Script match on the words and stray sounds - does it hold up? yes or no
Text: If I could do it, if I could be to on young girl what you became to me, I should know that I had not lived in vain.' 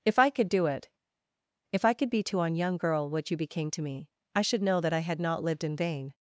yes